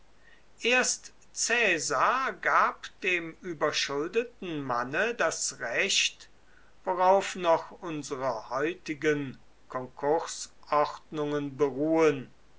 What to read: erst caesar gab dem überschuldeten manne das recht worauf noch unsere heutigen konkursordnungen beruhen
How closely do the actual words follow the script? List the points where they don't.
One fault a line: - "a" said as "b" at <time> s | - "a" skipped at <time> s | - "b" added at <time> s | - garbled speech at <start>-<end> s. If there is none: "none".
none